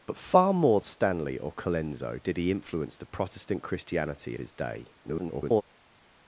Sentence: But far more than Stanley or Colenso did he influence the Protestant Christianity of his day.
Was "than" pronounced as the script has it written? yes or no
no